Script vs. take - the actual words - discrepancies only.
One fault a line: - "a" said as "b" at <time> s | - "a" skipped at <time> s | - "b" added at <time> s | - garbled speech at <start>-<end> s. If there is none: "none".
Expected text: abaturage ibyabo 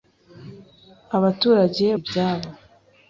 none